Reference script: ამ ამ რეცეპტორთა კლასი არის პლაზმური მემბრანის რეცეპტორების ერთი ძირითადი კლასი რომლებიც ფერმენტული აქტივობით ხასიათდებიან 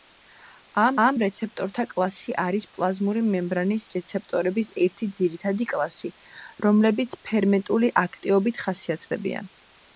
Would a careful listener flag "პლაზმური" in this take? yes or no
no